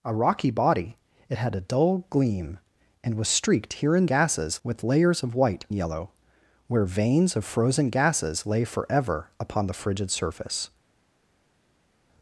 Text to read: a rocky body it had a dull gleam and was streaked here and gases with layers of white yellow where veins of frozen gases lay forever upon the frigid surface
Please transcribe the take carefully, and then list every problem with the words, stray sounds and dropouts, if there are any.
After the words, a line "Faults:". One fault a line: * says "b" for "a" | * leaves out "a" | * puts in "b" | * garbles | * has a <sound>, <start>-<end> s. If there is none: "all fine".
a rocky body it had a dull gleam and was streaked here and gases with layers of white yellow where veins of frozen gases lay forever upon the frigid surface
Faults:
all fine